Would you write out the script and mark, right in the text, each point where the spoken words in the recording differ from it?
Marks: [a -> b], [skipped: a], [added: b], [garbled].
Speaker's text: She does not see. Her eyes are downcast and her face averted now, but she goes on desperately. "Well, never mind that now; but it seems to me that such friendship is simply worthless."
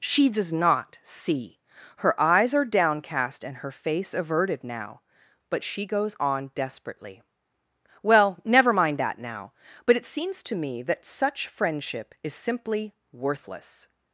She does not see. Her eyes are downcast and her face averted now, but she goes on desperately. "Well, never mind that now; but it seems to me that such friendship is simply worthless."